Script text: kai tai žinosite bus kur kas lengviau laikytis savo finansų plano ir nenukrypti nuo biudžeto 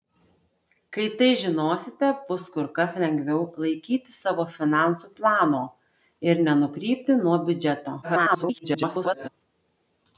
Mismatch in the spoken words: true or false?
true